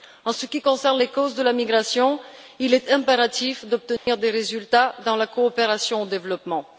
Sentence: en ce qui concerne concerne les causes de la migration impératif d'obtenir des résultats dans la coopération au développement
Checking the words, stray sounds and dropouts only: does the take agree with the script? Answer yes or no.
no